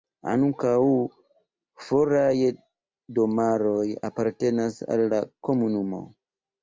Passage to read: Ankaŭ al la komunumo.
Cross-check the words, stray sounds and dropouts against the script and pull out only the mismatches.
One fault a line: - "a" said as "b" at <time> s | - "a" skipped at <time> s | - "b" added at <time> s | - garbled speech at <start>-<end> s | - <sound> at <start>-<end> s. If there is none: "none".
- "foraj domaroj apartenas" added at 1.9 s